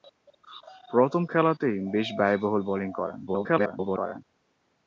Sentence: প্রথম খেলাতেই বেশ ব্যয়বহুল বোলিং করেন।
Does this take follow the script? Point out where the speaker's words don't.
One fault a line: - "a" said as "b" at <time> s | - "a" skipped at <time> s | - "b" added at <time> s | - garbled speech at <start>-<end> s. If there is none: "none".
- garbled speech at 3.3-4.2 s